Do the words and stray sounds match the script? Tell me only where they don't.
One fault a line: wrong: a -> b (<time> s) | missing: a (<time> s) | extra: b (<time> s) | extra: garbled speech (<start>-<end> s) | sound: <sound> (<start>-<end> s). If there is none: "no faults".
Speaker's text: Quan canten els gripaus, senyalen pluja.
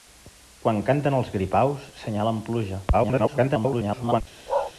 extra: garbled speech (2.9-4.2 s)
sound: bark (4.5-4.7 s)